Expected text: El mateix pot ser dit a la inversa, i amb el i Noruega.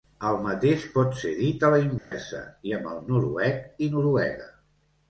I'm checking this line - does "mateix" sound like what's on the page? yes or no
yes